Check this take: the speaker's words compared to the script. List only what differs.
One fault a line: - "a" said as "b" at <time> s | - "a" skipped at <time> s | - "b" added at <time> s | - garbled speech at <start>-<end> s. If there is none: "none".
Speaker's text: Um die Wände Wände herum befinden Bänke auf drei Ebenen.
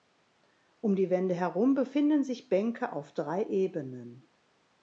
- "Wände" skipped at 1.4 s
- "sich" added at 2.2 s